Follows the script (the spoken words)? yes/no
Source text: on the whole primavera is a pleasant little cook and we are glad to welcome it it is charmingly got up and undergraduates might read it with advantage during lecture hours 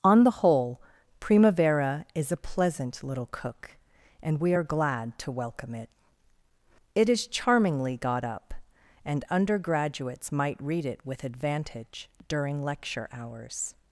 yes